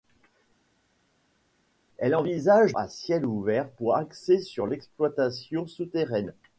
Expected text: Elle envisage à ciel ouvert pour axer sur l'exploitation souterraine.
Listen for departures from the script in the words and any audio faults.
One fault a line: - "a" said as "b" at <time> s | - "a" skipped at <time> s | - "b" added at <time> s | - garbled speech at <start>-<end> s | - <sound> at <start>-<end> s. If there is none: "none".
none